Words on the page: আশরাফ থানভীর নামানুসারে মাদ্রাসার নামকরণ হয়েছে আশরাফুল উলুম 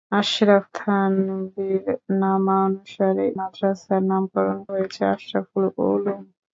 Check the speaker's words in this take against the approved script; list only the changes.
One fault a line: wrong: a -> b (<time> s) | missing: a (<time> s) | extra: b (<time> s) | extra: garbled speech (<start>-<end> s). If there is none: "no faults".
no faults